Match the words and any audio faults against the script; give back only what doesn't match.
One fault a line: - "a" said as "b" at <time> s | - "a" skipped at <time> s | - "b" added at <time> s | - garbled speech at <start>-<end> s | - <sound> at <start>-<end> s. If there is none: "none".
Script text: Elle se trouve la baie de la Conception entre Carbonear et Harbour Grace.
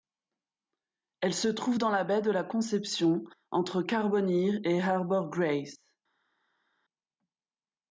- "dans" added at 1.8 s